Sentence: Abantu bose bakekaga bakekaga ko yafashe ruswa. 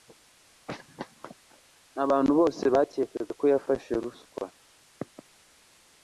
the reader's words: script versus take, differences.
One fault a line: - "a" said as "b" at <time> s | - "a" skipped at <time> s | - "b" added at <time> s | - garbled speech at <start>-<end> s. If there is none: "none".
- "bakekaga" skipped at 3.3 s